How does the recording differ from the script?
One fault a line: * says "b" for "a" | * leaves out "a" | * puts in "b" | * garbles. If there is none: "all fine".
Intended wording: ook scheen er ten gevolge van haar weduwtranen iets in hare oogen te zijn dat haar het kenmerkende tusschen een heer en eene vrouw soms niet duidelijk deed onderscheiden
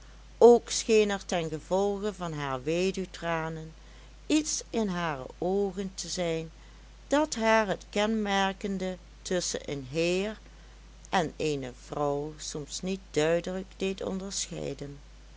all fine